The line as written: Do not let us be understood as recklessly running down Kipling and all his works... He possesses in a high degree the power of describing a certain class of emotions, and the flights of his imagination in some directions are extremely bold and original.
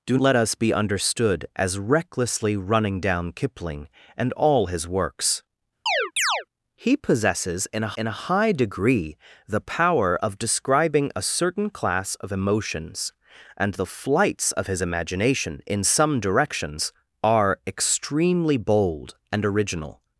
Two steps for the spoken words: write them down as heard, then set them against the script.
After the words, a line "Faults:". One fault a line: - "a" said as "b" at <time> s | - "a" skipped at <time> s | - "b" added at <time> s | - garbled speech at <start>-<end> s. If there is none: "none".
Do let us be understood as recklessly running down Kipling and all his works... He possesses in a in a high degree the power of describing a certain class of emotions, and the flights of his imagination in some directions are extremely bold and original.
Faults:
- "not" skipped at 0.2 s
- "in a" added at 8.0 s